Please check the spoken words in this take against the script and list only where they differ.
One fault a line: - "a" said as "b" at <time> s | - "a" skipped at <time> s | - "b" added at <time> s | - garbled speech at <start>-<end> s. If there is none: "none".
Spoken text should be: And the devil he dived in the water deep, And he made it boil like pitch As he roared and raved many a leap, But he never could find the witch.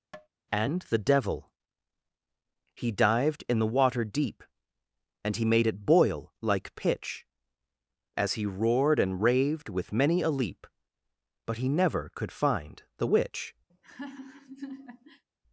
- "with" added at 9.7 s